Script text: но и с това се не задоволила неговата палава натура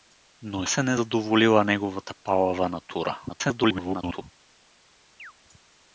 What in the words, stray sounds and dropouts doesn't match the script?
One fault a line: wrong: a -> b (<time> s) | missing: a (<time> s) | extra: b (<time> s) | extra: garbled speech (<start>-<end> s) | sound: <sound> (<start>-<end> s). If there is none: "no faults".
missing: с това (0.7 s)
extra: garbled speech (3.3-4.2 s)
sound: chirp (5.2-5.3 s)